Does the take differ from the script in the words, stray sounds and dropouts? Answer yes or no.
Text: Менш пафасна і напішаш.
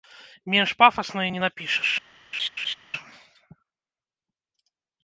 yes